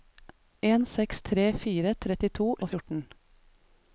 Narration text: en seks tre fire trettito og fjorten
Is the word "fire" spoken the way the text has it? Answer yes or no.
yes